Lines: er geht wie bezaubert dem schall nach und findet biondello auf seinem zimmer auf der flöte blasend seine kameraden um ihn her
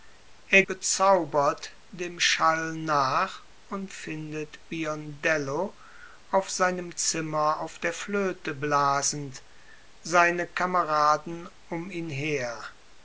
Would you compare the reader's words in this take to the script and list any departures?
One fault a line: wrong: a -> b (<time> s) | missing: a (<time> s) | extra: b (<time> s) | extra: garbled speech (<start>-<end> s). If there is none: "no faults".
missing: geht wie (0.6 s)